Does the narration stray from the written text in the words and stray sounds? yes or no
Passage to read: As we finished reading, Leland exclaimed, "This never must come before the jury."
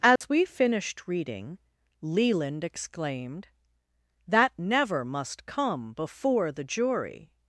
yes